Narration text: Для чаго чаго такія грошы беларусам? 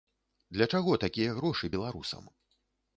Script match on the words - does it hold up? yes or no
no